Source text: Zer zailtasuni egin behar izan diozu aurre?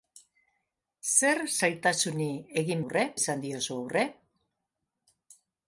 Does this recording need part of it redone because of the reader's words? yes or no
yes